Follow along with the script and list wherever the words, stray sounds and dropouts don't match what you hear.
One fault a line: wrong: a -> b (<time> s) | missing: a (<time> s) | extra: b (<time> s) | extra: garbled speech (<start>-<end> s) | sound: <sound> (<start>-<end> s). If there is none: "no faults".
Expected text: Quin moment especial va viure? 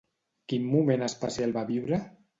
no faults